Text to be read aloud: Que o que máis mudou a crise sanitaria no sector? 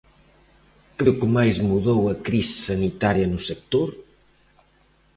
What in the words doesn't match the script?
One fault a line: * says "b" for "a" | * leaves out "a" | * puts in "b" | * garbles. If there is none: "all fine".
all fine